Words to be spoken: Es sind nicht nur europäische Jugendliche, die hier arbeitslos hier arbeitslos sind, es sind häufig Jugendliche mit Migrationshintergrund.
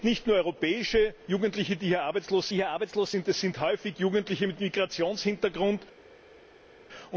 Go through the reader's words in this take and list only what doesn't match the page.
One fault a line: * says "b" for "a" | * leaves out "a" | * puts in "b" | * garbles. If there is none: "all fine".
all fine